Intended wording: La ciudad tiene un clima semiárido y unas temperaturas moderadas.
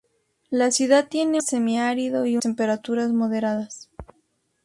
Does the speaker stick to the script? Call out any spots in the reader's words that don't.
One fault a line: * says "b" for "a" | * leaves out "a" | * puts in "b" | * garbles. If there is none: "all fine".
* leaves out "un clima"
* leaves out "unas"